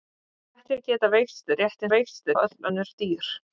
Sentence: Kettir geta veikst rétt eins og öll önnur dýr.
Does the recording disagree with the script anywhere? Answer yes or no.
yes